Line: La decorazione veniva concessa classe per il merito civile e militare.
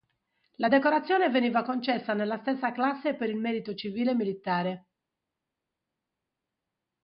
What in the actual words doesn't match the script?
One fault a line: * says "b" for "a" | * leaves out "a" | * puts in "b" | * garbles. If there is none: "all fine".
* puts in "nella stessa"